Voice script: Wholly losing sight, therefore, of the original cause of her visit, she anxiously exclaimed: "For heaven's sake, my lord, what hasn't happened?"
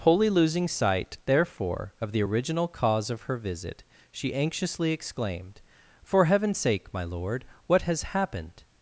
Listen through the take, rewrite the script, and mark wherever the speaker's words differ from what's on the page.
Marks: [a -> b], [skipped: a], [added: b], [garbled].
Wholly losing sight, therefore, of the original cause of her visit, she anxiously exclaimed: "For heaven's sake, my lord, what [hasn't -> has] happened?"